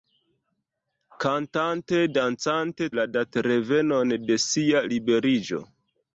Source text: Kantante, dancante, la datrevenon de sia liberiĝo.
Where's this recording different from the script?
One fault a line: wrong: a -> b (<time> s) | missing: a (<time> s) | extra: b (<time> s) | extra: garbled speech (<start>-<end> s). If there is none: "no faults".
no faults